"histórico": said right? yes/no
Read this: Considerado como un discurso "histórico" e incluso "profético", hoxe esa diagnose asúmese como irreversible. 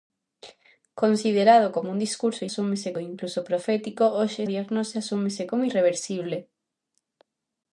no